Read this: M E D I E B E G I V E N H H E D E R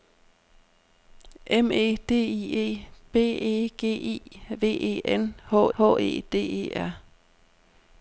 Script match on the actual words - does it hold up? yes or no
yes